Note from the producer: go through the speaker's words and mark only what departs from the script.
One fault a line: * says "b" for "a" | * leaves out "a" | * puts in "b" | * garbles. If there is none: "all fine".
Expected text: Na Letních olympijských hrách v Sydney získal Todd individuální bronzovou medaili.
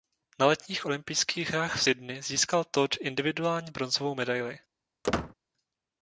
all fine